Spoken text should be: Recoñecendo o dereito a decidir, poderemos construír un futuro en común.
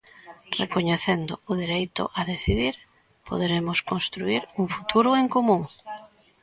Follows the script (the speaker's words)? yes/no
yes